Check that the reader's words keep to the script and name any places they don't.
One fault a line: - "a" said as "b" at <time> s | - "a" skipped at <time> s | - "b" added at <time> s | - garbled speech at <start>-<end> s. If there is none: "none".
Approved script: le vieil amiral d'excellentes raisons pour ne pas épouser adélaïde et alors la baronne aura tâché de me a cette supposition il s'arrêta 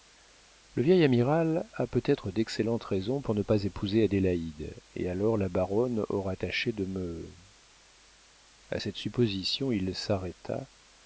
- "a peut être" added at 1.7 s